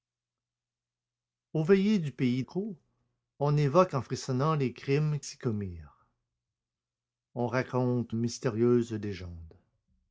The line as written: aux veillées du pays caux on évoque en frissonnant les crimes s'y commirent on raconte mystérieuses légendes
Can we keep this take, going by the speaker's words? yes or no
yes